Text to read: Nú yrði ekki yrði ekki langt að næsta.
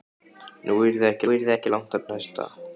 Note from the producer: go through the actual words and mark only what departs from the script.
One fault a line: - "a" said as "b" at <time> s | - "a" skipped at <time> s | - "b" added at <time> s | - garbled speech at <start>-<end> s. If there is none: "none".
none